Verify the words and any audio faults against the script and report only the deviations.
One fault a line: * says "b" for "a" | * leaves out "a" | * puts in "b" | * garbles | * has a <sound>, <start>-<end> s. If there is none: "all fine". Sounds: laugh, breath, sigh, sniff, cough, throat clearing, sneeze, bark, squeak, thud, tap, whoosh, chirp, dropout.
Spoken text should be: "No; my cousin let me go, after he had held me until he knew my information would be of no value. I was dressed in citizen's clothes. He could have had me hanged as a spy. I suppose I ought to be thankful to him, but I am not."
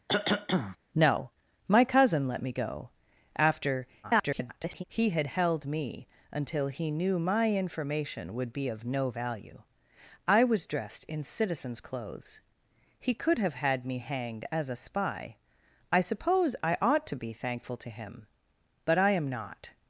* has a cough, 0.1-0.8 s
* garbles